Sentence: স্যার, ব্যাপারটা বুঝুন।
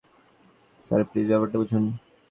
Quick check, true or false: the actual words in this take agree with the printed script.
false